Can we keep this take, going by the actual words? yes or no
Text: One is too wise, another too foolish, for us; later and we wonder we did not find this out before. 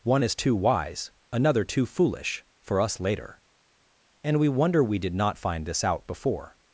yes